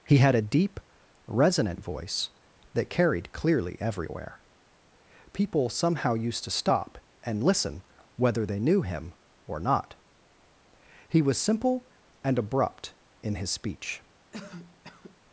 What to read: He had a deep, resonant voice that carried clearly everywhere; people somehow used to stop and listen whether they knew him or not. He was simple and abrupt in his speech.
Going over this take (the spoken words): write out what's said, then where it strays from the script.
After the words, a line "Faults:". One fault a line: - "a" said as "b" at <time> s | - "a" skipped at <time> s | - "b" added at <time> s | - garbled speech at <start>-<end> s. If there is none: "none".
He had a deep, resonant voice that carried clearly everywhere; people somehow used to stop and listen whether they knew him or not. He was simple and abrupt in his speech.
Faults:
none